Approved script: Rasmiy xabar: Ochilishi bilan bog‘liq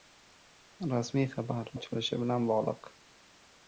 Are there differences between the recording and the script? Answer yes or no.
no